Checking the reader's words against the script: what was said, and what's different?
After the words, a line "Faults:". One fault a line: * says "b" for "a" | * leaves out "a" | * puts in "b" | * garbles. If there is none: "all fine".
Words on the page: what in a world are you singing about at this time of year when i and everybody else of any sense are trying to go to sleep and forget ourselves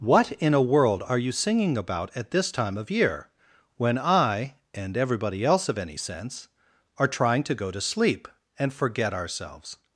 what in a world are you singing about at this time of year when i and everybody else of any sense are trying to go to sleep and forget ourselves
Faults:
all fine